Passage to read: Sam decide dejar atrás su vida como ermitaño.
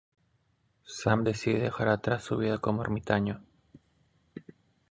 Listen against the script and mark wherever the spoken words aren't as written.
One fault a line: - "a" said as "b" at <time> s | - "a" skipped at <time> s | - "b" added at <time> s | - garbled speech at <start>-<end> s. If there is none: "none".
none